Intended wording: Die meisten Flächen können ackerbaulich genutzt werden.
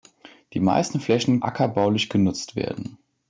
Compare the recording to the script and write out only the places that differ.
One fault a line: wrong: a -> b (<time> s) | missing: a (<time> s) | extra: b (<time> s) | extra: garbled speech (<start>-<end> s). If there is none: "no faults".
missing: können (1.4 s)